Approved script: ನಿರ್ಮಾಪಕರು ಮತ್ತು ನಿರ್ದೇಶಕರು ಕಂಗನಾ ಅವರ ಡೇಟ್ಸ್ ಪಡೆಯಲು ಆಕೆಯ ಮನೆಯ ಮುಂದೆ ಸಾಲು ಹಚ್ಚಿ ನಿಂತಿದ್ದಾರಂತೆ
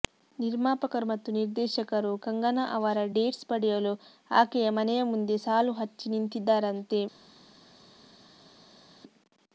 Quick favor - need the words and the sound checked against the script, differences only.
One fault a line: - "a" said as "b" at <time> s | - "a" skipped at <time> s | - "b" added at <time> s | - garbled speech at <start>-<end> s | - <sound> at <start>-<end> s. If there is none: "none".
none